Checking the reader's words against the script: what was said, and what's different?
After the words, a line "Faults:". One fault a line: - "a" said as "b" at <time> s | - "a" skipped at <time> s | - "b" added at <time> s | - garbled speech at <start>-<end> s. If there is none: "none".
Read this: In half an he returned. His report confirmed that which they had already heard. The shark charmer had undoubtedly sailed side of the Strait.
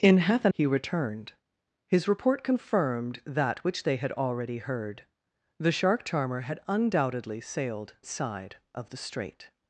In half an he returned. His report confirmed that which they had already heard. The shark charmer had undoubtedly sailed side of the Strait.
Faults:
none